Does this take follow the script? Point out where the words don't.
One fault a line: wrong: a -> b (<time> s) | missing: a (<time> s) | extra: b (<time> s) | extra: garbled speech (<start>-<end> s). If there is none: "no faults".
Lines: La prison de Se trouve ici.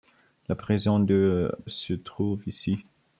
no faults